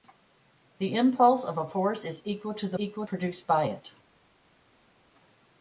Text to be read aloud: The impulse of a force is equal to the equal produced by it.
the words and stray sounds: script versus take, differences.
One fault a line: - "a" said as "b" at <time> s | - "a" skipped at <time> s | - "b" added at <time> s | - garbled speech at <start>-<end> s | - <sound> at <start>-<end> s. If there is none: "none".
none